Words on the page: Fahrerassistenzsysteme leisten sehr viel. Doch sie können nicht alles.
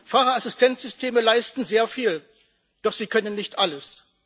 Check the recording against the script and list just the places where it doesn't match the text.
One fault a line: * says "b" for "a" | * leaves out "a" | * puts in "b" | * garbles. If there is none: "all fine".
all fine